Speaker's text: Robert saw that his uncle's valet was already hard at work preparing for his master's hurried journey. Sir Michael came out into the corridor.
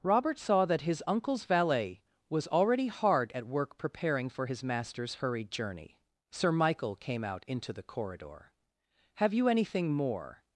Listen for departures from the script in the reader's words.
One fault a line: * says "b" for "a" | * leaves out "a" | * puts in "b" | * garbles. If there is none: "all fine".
* puts in "Have you anything more"